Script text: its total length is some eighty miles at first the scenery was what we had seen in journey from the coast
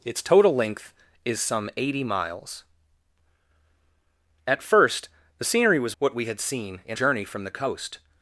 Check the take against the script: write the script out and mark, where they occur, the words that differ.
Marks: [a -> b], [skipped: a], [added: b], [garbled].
its total length is some eighty miles at first the scenery was what we had seen in journey from the coast